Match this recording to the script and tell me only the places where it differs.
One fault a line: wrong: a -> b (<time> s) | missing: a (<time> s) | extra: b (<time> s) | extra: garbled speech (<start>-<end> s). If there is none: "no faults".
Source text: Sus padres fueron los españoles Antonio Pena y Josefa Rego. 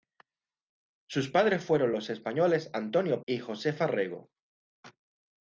missing: Pena (3.2 s)